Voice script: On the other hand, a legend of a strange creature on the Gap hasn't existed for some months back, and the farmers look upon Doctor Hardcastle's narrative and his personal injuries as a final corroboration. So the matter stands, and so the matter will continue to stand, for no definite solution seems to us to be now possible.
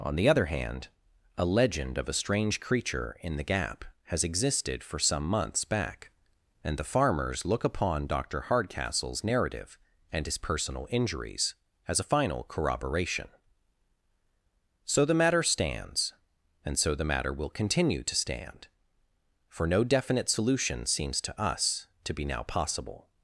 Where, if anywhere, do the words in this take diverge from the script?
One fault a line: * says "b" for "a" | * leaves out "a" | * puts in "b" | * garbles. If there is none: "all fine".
* says "in" for "on"
* says "has" for "hasn't"